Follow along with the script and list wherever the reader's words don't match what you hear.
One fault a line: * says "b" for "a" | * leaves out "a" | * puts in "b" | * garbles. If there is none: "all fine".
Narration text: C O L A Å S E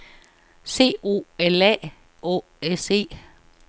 all fine